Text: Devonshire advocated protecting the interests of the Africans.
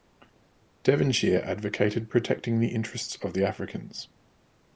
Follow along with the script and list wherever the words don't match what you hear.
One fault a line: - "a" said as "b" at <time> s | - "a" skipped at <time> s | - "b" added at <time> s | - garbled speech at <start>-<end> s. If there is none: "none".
none